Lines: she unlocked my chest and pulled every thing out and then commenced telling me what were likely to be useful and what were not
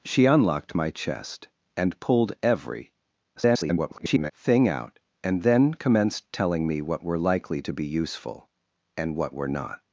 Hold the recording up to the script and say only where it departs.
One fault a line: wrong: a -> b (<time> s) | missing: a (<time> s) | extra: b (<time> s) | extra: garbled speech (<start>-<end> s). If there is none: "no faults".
extra: garbled speech (3.4-4.3 s)